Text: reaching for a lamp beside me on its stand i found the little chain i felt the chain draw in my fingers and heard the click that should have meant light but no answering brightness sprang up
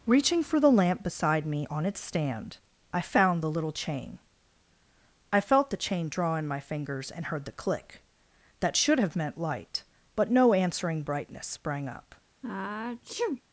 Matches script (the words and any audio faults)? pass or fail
fail